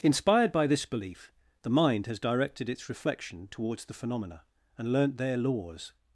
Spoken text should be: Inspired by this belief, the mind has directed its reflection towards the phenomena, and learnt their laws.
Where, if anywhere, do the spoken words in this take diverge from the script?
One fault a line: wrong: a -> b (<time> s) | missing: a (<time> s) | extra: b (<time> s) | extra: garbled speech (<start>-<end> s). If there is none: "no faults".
no faults